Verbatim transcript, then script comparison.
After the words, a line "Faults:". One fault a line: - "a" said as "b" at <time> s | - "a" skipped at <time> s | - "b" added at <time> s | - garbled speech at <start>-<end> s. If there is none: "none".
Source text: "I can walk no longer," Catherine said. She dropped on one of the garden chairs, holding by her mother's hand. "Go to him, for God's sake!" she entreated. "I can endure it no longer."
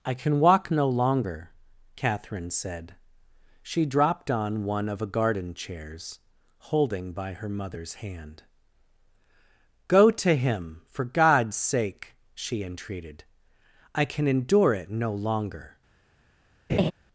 "I can walk no longer," Catherine said. She dropped on one of a garden chairs, holding by her mother's hand. "Go to him, for God's sake!" she entreated. "I can endure it no longer."
Faults:
- "the" said as "a" at 5.0 s